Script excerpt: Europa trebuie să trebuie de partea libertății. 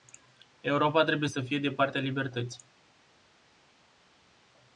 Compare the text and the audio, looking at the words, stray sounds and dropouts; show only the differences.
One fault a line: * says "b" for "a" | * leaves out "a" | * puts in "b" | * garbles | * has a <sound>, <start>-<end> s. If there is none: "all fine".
* says "fie" for "trebuie"